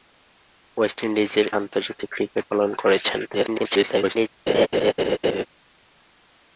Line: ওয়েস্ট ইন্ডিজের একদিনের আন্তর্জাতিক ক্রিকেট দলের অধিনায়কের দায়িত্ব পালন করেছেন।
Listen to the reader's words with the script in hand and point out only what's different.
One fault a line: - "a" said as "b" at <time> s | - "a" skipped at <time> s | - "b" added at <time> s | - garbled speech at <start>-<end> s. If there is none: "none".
- "একদিনের" skipped at 1.5 s
- "দলের অধিনায়কের দায়িত্ব" skipped at 2.4 s
- garbled speech at 3.3-4.3 s